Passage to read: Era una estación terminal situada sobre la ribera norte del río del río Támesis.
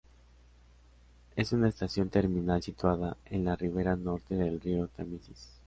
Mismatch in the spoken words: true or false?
true